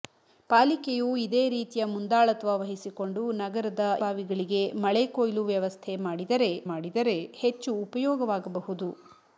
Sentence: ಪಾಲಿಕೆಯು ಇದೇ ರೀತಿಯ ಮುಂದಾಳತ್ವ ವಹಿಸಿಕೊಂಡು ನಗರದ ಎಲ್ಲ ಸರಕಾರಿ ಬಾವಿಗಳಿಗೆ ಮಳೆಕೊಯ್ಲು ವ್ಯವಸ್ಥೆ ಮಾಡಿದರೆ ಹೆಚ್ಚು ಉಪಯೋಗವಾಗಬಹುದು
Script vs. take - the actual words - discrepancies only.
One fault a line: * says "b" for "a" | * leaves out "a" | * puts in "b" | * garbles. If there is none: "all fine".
* leaves out "ಎಲ್ಲ ಸರಕಾರಿ"
* puts in "ಮಾಡಿದರೆ"